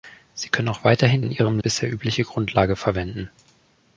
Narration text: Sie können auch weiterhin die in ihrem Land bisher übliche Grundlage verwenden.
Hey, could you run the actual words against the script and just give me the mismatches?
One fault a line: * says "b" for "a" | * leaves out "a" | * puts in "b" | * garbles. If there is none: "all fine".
* leaves out "die"
* leaves out "Land"